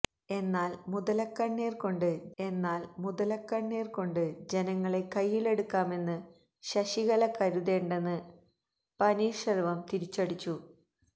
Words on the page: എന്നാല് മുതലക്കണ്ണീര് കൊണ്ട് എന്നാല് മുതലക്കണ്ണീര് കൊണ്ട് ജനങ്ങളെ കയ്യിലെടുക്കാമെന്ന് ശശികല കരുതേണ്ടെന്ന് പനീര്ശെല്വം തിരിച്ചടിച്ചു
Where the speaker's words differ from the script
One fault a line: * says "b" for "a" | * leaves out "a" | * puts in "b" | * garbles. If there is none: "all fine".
all fine